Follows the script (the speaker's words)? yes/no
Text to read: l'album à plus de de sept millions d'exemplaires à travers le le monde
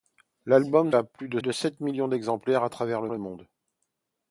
yes